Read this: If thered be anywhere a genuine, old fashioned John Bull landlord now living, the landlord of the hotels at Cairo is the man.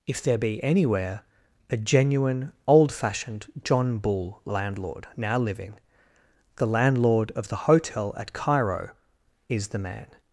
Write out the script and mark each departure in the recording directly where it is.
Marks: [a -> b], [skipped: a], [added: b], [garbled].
If [thered -> there] be anywhere a genuine, old fashioned John Bull landlord now living, the landlord of the [hotels -> hotel] at Cairo is the man.